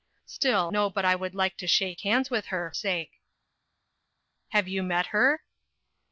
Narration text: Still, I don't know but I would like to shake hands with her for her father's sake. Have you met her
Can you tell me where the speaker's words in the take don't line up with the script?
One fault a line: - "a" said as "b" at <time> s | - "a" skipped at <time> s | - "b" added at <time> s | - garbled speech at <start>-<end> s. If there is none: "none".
- "I don't" skipped at 0.7 s
- "for her father's" skipped at 2.7 s